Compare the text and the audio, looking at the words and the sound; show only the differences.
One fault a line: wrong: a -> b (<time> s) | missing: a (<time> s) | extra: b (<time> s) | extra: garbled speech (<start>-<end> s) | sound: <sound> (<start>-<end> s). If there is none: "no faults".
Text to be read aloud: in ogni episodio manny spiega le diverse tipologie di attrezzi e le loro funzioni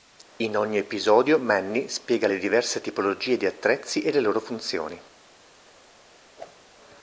sound: whoosh (6.4-6.6 s)